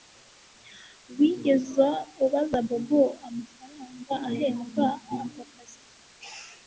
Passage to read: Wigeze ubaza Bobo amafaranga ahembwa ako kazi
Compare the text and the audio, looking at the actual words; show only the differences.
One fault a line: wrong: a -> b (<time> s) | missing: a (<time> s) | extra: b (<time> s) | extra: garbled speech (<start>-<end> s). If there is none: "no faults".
no faults